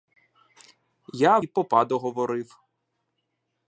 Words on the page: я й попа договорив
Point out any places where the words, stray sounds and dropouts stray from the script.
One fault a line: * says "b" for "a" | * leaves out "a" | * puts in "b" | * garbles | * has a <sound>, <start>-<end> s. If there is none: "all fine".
all fine